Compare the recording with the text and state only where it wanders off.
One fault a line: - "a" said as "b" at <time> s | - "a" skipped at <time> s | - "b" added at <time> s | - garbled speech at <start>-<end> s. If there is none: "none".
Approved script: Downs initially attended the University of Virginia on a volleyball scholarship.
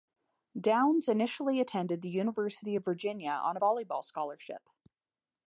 none